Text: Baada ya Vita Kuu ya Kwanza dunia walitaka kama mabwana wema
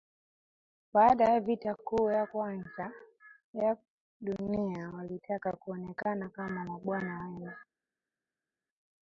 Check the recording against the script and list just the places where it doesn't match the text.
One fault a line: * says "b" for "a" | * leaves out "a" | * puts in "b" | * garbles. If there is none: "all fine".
* puts in "ya"
* puts in "kuonekana"